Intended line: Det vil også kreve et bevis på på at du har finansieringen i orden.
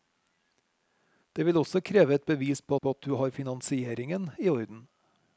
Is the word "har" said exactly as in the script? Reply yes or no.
yes